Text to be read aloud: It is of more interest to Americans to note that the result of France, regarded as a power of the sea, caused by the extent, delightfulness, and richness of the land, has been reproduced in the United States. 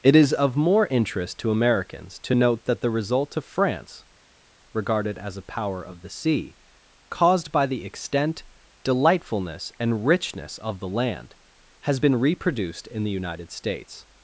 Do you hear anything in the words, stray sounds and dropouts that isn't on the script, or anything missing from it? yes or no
no